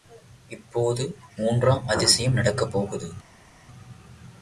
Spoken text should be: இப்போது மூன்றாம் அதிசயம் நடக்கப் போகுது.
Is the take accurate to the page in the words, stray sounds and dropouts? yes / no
yes